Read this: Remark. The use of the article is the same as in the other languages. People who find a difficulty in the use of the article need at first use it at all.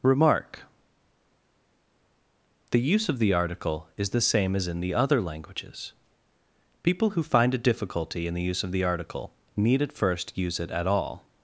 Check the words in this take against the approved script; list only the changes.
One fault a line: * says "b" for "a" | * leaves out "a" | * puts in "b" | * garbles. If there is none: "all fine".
all fine